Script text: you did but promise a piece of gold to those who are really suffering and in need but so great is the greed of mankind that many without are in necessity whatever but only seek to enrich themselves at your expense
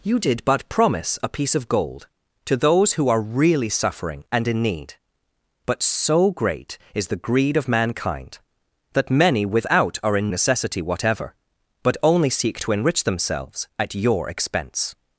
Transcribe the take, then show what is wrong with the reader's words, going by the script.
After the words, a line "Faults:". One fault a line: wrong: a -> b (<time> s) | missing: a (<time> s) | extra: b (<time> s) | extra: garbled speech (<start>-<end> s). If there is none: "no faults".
you did but promise a piece of gold to those who are really suffering and in need but so great is the greed of mankind that many without are in necessity whatever but only seek to enrich themselves at your expense
Faults:
no faults